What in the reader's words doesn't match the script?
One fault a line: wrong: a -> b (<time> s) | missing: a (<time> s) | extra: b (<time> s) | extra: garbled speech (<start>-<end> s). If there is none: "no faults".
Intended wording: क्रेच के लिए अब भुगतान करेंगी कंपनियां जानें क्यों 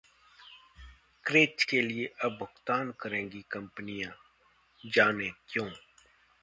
no faults